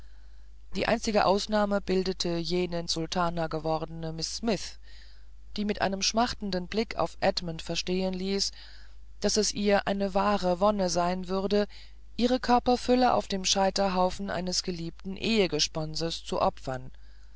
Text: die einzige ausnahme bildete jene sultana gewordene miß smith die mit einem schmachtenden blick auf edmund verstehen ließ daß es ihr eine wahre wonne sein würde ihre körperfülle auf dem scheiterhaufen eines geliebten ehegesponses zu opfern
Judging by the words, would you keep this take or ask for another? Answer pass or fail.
pass